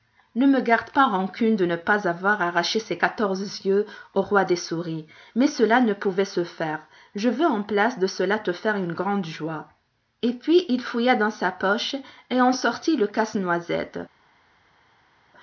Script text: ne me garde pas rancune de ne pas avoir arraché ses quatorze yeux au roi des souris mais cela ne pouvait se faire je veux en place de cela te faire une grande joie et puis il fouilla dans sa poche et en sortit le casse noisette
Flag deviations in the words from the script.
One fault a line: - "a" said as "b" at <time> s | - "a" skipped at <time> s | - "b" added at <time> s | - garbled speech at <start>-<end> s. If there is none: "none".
none